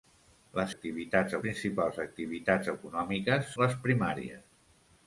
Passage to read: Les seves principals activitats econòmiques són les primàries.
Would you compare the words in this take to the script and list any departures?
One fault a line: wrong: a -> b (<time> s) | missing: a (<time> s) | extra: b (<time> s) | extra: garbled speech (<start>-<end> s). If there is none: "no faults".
wrong: seves -> activitats (0.7 s)
missing: són (3.5 s)